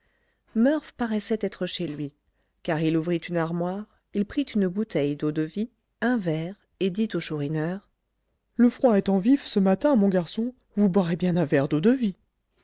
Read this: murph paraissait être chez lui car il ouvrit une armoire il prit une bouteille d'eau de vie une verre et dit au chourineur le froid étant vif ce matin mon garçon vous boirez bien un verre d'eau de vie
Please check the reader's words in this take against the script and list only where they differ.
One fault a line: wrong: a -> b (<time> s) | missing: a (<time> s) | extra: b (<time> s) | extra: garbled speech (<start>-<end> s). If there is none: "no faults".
wrong: une -> un (6.0 s)